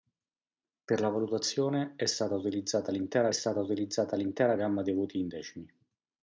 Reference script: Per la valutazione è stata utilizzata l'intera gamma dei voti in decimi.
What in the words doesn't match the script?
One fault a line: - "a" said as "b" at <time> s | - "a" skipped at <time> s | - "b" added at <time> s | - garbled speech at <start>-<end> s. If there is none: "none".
- "stata utilizzata l'intera" added at 3.3 s